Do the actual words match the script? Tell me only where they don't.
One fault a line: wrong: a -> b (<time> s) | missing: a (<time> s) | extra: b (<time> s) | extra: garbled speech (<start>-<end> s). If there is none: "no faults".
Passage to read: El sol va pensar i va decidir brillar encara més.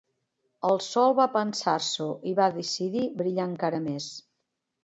extra: s'ho (1.9 s)